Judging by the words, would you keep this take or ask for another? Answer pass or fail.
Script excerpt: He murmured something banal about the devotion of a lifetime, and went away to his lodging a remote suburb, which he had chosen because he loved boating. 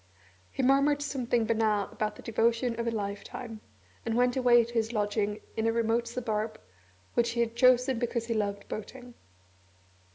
fail